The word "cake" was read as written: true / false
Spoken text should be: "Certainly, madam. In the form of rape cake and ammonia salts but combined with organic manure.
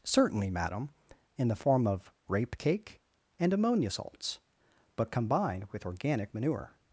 true